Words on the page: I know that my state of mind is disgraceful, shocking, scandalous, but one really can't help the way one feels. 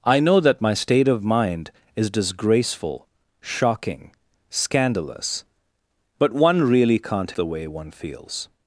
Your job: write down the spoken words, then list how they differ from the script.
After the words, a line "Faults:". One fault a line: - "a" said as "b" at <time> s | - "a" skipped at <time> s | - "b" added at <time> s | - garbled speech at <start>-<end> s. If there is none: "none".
I know that my state of mind is disgraceful, shocking, scandalous, but one really can't the way one feels.
Faults:
- "help" skipped at 7.3 s